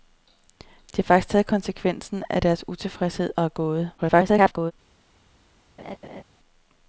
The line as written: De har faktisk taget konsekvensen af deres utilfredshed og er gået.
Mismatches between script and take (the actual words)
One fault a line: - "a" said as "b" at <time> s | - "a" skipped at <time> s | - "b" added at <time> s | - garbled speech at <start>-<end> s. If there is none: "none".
- garbled speech at 4.0-4.7 s